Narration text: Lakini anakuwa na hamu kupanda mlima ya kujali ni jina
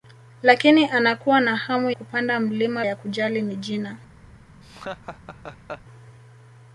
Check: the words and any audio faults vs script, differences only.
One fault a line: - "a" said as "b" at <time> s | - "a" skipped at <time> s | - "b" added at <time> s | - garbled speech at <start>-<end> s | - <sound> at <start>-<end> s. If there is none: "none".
- laugh at 4.6-5.8 s